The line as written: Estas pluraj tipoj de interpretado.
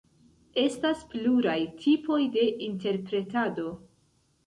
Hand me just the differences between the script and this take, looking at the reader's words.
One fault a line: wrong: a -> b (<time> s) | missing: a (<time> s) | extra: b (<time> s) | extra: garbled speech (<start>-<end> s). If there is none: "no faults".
no faults